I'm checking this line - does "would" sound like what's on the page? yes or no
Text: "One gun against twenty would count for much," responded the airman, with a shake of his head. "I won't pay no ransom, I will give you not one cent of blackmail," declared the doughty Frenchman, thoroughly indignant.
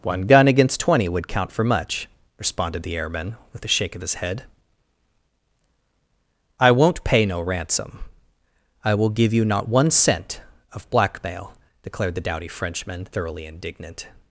yes